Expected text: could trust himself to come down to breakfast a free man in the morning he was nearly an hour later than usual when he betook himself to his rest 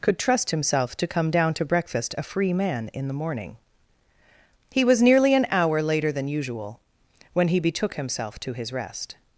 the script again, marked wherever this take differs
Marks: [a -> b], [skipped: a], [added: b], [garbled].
could trust himself to come down to breakfast a free man in the morning he was nearly an hour later than usual when he betook himself to his rest